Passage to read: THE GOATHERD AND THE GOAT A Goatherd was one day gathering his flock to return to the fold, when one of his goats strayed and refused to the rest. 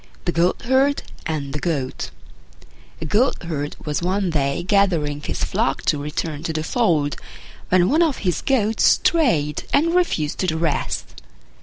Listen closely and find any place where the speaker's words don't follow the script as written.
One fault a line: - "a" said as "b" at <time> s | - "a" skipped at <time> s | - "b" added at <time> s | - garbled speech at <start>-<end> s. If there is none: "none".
none